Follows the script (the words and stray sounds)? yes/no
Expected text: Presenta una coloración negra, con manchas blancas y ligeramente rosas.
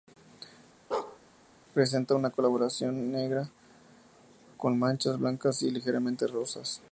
no